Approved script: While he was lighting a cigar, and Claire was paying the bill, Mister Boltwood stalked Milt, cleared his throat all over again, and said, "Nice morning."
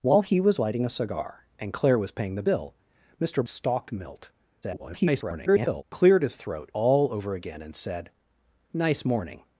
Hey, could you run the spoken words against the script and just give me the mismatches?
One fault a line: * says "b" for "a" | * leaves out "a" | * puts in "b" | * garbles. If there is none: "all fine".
* leaves out "Boltwood"
* garbles